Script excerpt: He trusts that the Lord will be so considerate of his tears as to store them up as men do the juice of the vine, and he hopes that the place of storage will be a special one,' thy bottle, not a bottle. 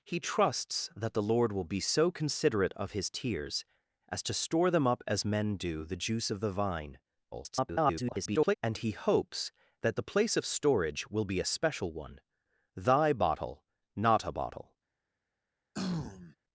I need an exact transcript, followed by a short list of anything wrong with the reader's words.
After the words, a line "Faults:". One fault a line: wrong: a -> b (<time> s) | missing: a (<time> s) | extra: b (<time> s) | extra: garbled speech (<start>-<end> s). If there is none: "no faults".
He trusts that the Lord will be so considerate of his tears as to store them up as men do the juice of the vine, [garbled] and he hopes that the place of storage will be a special one,' thy bottle, not a bottle.
Faults:
extra: garbled speech (7.3-8.5 s)